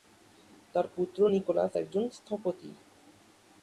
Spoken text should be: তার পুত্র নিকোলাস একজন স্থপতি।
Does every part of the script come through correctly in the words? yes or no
yes